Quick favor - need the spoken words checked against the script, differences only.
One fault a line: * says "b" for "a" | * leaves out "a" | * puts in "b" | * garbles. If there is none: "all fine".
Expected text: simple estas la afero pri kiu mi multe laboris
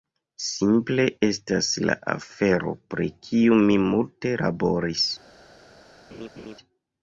all fine